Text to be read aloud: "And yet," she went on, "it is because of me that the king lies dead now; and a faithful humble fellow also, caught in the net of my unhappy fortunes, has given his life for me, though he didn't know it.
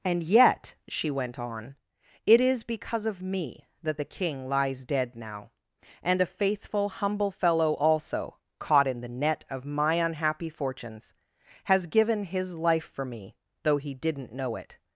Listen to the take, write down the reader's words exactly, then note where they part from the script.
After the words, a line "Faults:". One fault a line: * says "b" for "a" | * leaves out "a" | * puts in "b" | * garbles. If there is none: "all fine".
"And yet," she went on, "it is because of me that the king lies dead now; and a faithful humble fellow also, caught in the net of my unhappy fortunes, has given his life for me, though he didn't know it.
Faults:
all fine